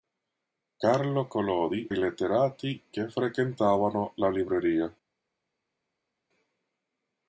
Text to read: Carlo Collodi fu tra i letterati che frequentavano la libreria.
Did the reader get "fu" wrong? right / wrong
wrong